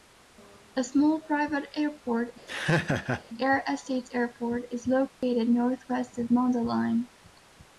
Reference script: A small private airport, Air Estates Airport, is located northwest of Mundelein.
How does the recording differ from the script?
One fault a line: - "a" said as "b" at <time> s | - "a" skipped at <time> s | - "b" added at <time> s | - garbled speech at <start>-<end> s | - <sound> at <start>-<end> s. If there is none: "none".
- laugh at 2.5-3.2 s
- dropout at 5.1-5.2 s